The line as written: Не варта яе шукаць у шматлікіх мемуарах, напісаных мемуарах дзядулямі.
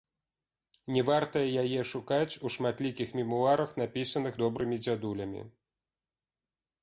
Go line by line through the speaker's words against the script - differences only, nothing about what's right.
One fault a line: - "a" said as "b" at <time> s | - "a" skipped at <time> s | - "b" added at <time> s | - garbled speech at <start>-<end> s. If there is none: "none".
- "мемуарах" said as "добрымі" at 4.4 s